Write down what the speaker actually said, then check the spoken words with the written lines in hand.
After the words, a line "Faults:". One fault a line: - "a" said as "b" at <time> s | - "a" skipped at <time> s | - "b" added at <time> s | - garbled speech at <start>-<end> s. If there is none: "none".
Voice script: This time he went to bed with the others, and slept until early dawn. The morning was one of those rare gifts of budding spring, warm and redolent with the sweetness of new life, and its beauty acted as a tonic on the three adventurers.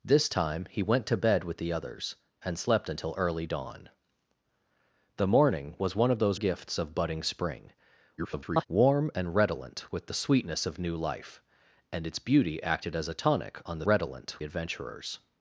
This time he went to bed with the others, and slept until early dawn. The morning was one of those gifts of budding spring, [garbled] warm and redolent with the sweetness of new life, and its beauty acted as a tonic on the redolent adventurers.
Faults:
- "rare" skipped at 6.4 s
- garbled speech at 8.2-8.7 s
- "three" said as "redolent" at 13.8 s